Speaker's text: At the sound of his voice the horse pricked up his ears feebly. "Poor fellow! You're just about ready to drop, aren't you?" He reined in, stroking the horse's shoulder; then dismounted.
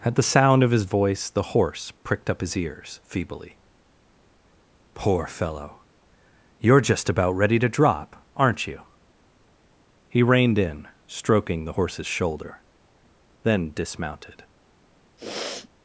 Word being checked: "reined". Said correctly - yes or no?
yes